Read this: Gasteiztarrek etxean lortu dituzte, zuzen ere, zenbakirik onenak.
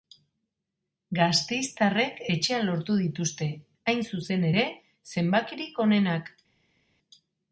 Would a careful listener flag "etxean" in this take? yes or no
no